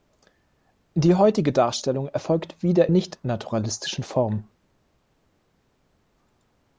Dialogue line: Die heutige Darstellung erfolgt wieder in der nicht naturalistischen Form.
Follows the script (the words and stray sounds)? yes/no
no